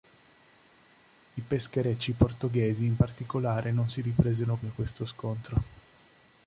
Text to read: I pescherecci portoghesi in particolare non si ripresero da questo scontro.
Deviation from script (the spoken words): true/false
false